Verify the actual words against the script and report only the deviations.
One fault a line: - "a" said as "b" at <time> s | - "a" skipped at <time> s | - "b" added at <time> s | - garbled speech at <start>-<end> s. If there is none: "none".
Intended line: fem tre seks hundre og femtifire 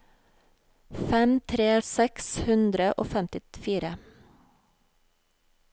none